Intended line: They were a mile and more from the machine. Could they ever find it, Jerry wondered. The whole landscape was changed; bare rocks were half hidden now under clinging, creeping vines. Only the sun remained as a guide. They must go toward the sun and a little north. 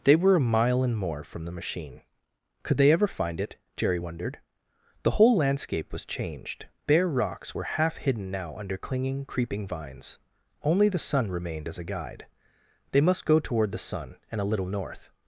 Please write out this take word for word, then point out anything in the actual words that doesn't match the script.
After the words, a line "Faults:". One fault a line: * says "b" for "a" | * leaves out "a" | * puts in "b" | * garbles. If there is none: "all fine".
They were a mile and more from the machine. Could they ever find it, Jerry wondered. The whole landscape was changed; bare rocks were half hidden now under clinging, creeping vines. Only the sun remained as a guide. They must go toward the sun and a little north.
Faults:
all fine